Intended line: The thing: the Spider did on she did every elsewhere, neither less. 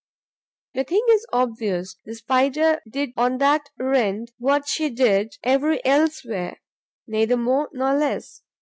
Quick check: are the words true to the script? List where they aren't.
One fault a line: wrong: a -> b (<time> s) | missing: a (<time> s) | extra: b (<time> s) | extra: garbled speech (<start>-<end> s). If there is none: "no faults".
extra: is obvious (1.1 s)
extra: that rent what (3.4 s)
extra: more nor (7.4 s)